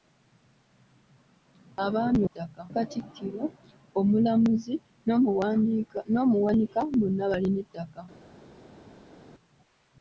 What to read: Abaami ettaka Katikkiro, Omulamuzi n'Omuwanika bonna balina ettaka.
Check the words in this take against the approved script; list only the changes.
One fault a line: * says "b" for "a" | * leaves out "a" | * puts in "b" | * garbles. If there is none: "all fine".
all fine